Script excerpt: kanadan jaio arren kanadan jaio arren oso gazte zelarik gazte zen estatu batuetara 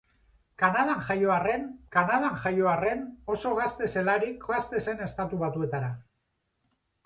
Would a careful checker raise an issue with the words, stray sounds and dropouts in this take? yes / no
no